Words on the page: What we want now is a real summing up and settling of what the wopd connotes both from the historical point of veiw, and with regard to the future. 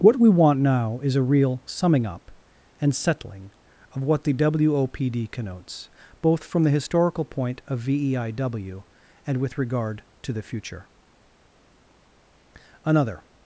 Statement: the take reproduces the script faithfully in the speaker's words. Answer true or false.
false